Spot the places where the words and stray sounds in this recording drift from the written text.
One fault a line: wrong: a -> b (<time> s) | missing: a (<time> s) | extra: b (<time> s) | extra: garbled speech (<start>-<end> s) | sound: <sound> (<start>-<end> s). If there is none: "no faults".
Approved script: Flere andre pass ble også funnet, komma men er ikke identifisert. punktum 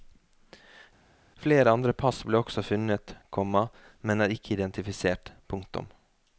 no faults